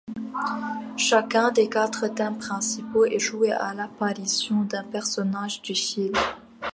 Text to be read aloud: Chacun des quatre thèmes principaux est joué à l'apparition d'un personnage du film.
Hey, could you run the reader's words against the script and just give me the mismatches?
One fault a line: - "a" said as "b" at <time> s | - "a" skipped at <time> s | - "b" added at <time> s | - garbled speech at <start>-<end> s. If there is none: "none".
none